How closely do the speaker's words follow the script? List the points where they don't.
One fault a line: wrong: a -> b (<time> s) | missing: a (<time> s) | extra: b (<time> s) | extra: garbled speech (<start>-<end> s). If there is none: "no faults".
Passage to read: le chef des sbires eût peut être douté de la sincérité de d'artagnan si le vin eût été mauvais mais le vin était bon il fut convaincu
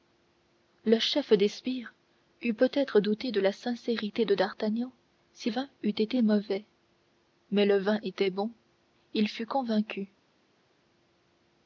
missing: le (5.5 s)